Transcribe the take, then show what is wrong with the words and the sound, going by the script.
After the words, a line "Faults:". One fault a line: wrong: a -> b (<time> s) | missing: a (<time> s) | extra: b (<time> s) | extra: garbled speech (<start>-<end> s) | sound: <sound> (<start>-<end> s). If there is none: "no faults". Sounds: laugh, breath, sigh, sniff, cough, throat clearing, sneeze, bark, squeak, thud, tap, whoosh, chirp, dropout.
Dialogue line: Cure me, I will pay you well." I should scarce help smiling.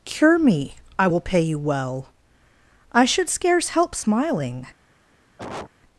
Cure me, I will pay you well." I should scarce help smiling.
Faults:
sound: cough (5.4-5.7 s)